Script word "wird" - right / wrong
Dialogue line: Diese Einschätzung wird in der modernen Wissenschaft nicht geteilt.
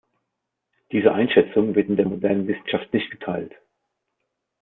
right